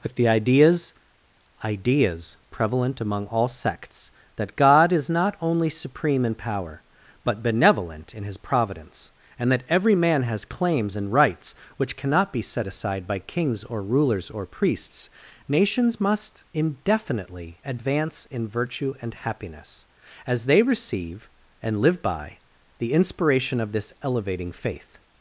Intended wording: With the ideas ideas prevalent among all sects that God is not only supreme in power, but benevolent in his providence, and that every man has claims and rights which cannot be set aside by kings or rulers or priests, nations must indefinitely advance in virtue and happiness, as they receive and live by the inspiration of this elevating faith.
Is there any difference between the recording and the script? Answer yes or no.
no